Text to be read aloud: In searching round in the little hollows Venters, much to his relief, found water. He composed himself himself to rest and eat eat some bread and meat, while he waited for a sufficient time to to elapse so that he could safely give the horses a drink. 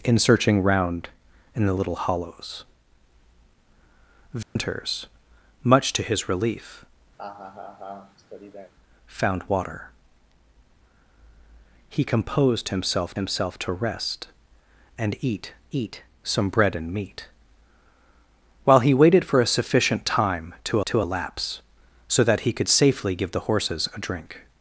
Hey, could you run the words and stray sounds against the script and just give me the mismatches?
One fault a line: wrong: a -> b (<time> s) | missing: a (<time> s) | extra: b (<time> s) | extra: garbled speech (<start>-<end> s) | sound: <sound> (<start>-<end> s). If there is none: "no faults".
sound: dropout (4.4-4.6 s)
sound: laugh (7.2-8.7 s)